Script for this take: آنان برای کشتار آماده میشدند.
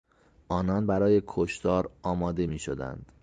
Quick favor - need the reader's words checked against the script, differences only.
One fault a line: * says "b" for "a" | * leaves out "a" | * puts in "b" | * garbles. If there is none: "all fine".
all fine